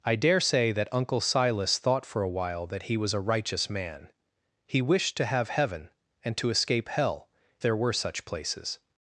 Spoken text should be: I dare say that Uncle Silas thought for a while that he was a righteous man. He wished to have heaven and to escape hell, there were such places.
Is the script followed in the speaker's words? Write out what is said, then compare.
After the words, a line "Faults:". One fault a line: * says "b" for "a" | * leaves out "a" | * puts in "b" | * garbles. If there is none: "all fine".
I dare say that Uncle Silas thought for a while that he was a righteous man. He wished to have heaven and to escape hell, there were such places.
Faults:
all fine